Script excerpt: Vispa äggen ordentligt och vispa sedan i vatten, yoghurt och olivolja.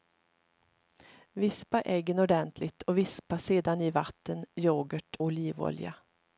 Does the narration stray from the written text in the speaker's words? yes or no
yes